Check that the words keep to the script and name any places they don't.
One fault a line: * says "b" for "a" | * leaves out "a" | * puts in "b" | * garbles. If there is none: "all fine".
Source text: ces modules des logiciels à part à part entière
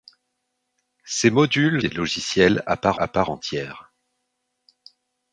all fine